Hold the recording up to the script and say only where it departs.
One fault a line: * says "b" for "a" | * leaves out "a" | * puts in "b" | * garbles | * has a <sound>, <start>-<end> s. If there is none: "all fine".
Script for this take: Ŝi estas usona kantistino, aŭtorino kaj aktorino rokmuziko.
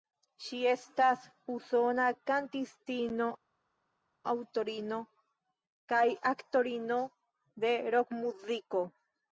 * puts in "de"